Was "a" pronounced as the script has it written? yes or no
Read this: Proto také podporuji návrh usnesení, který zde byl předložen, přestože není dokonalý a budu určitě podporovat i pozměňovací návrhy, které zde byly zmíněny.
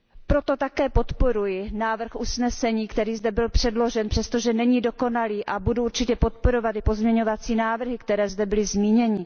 yes